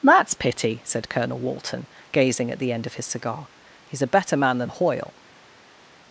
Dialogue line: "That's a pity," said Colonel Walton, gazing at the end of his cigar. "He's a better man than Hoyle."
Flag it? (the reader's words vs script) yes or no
yes